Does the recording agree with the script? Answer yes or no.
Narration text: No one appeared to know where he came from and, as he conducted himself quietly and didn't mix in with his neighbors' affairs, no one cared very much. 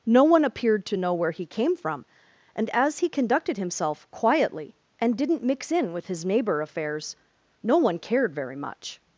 no